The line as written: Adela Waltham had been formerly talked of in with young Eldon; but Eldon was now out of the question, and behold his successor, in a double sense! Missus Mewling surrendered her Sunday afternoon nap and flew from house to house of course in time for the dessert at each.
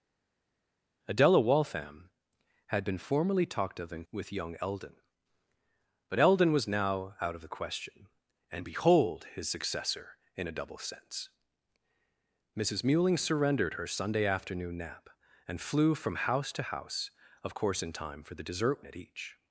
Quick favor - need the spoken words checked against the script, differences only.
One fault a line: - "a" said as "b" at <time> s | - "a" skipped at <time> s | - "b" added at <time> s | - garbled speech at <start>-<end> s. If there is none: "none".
none